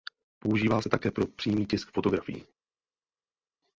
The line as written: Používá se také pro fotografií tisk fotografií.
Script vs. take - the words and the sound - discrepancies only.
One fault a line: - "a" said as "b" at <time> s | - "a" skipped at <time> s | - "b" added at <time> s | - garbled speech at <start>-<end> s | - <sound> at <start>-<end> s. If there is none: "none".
- "fotografií" said as "přímý" at 1.3 s